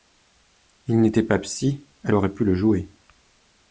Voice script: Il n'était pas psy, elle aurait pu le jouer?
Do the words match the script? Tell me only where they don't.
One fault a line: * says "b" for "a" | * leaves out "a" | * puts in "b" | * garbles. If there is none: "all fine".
all fine